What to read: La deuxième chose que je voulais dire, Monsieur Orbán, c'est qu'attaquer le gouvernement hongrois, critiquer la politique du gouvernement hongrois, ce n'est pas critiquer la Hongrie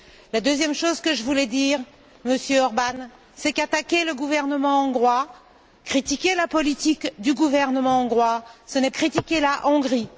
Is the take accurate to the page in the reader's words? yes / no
no